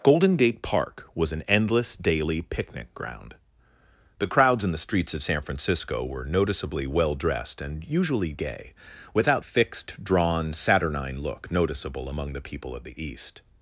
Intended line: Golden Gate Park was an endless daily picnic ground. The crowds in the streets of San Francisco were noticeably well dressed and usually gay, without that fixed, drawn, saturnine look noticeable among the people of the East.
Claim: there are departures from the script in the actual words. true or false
true